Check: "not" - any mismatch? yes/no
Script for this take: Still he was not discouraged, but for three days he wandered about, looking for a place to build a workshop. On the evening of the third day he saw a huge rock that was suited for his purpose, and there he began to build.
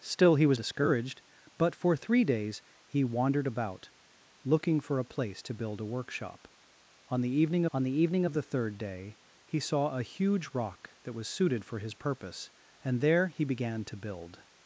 yes